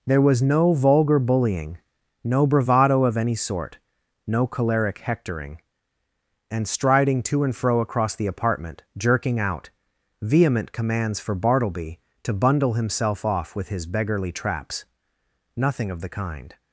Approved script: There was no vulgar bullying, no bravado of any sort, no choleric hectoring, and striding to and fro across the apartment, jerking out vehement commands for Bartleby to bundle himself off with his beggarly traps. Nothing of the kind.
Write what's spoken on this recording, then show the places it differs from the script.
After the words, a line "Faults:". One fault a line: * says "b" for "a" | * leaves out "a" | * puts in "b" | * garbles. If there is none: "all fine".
There was no vulgar bullying, no bravado of any sort, no choleric hectoring, and striding to and fro across the apartment, jerking out vehement commands for Bartleby to bundle himself off with his beggarly traps. Nothing of the kind.
Faults:
all fine